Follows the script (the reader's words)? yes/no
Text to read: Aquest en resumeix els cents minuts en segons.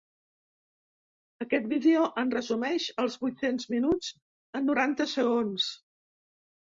no